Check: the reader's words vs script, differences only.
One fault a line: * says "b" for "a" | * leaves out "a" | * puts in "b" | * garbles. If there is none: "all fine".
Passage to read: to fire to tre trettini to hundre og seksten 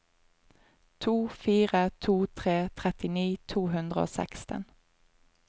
all fine